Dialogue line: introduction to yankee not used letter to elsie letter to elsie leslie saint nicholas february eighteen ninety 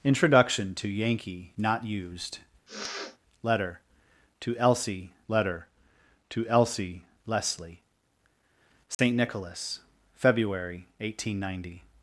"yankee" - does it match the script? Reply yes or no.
yes